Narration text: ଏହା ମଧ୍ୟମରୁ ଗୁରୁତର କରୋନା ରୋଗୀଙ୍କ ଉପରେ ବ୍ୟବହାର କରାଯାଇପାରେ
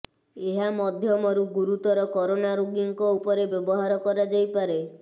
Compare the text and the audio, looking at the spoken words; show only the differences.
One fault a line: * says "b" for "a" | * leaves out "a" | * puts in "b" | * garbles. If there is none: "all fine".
all fine